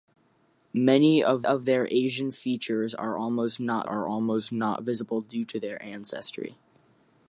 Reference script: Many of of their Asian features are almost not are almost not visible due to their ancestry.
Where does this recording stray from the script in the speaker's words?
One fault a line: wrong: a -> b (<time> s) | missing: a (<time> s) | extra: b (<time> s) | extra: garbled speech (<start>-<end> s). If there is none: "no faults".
no faults